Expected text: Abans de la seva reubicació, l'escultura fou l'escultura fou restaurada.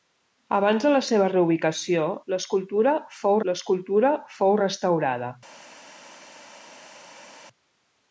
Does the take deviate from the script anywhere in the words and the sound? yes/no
no